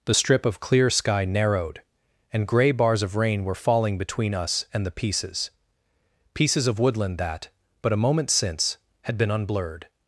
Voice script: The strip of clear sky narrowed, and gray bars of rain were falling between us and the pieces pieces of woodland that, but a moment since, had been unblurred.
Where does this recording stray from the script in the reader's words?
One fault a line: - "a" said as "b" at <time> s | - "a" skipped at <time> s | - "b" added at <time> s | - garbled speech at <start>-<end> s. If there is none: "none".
none